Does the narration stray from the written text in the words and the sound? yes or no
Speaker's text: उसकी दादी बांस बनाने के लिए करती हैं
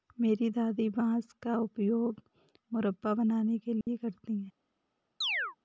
yes